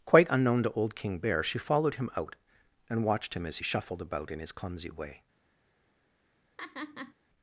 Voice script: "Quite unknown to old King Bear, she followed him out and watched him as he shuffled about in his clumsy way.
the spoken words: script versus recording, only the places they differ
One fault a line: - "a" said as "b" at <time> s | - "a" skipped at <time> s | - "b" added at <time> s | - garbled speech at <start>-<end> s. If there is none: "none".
none